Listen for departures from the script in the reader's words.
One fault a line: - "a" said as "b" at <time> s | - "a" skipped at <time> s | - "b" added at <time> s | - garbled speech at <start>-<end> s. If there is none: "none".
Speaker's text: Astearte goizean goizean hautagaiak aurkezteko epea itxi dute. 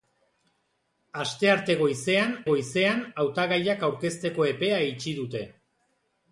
none